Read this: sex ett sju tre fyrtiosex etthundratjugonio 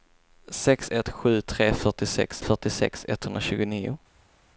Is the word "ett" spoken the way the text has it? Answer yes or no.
yes